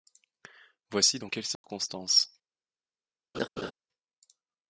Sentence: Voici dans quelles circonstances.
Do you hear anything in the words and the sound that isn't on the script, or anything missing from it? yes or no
yes